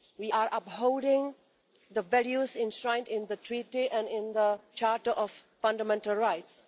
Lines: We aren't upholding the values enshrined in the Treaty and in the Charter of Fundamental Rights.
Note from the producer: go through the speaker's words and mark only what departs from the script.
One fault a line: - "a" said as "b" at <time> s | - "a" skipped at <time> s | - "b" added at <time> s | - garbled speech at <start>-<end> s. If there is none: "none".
- "aren't" said as "are" at 0.3 s